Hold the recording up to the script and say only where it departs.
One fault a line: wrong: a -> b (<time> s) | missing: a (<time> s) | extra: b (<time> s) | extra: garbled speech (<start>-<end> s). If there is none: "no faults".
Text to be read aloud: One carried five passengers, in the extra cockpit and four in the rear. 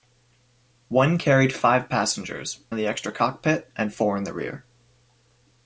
no faults